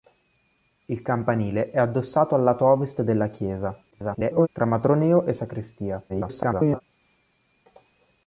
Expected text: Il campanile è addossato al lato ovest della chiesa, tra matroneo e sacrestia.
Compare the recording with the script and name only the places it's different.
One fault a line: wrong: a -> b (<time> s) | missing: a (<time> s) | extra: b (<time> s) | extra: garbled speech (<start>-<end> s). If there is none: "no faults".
extra: garbled speech (3.9-4.5 s)
extra: garbled speech (6.1-6.8 s)